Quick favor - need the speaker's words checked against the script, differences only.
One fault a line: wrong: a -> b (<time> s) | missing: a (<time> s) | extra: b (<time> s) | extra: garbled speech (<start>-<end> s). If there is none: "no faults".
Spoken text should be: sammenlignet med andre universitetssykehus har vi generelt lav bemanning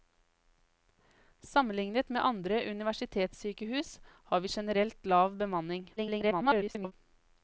extra: garbled speech (6.0-6.9 s)